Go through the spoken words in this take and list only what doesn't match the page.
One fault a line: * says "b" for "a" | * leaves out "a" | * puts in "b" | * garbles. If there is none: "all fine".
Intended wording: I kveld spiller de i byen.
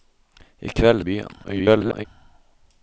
* leaves out "spiller de"
* garbles